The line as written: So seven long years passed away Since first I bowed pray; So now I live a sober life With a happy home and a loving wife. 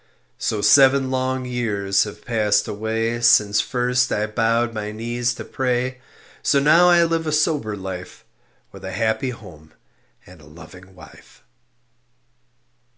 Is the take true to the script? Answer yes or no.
no